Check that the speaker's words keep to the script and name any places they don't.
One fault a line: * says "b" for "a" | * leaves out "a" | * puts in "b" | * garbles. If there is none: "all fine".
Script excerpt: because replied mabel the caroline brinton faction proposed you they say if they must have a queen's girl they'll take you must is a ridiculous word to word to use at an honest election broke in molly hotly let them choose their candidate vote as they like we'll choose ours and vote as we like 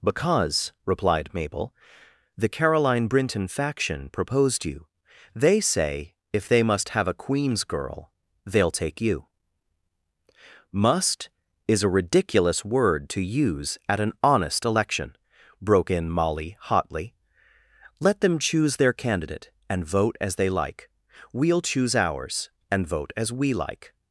* leaves out "word to"
* puts in "and"